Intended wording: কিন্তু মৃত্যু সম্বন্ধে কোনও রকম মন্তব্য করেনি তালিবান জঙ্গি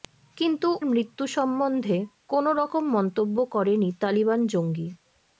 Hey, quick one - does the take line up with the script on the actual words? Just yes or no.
yes